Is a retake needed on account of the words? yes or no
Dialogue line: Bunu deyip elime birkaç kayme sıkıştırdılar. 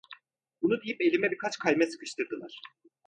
no